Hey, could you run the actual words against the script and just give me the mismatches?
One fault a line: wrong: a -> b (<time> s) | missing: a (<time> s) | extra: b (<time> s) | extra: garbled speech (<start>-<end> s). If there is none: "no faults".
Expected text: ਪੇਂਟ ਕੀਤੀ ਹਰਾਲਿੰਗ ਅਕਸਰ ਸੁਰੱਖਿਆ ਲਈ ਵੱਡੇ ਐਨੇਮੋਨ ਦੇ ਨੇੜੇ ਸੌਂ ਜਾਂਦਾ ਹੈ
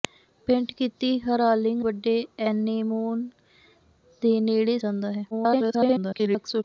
missing: ਅਕਸਰ ਸੁਰੱਖਿਆ ਲਈ (1.8 s)
missing: ਸੌਂ (4.8 s)
extra: garbled speech (5.3-6.6 s)